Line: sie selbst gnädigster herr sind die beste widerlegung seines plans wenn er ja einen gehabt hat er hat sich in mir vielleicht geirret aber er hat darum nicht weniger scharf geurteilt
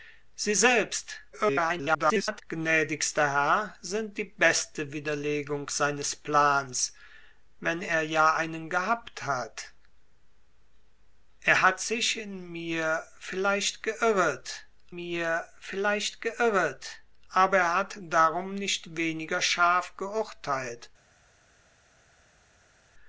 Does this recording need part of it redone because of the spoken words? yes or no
yes